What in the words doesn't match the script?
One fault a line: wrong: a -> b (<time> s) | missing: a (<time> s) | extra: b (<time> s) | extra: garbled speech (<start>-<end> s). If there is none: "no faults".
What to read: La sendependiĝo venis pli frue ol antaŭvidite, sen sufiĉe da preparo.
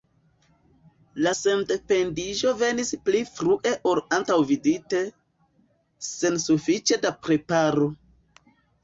no faults